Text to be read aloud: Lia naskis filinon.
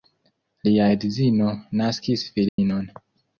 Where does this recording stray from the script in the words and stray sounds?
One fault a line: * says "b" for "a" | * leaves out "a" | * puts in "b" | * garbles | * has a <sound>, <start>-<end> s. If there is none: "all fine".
* puts in "edzino"
* has a dropout, 2.5-2.6 s